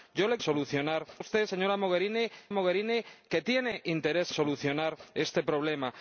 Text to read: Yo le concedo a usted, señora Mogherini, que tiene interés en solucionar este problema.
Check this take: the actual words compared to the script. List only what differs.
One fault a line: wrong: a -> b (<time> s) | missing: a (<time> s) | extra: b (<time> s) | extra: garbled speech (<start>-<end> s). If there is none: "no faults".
wrong: concedo -> solucionar (0.4 s)
extra: Mogherini (2.5 s)
missing: en (4.3 s)